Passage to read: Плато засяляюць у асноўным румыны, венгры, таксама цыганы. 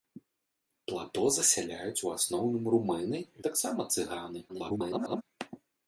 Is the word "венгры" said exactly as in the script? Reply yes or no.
no